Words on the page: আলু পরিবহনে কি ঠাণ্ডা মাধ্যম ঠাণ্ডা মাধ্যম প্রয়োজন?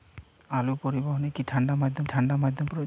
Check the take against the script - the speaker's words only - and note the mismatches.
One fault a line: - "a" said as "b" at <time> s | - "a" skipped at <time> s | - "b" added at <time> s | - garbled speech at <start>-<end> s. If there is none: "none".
none